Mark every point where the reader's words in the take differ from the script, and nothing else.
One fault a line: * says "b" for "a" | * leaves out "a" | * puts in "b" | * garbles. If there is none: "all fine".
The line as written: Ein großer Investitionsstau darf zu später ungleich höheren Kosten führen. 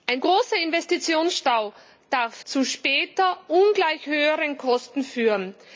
all fine